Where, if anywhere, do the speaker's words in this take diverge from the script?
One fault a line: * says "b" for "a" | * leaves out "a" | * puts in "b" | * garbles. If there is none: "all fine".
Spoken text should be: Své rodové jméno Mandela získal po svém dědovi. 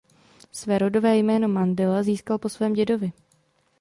all fine